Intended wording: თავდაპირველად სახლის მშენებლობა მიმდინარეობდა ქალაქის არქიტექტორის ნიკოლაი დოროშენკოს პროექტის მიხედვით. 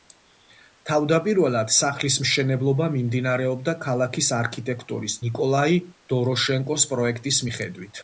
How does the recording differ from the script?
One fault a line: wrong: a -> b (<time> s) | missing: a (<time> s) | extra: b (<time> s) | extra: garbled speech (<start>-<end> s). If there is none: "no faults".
no faults